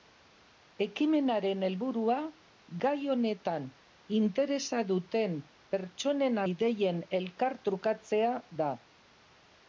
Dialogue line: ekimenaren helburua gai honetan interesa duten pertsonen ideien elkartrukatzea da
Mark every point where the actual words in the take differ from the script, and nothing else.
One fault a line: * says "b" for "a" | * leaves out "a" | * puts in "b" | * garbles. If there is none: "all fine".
all fine